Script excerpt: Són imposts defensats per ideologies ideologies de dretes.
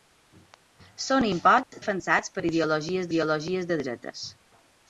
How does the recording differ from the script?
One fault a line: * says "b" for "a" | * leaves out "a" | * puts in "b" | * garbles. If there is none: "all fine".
all fine